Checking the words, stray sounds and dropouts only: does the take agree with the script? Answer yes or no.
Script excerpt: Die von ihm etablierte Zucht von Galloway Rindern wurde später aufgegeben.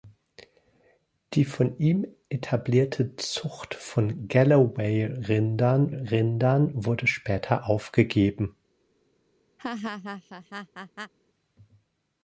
no